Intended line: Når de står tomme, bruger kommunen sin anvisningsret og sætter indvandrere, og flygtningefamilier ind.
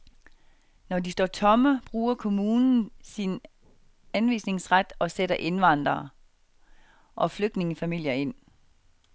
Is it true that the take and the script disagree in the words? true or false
false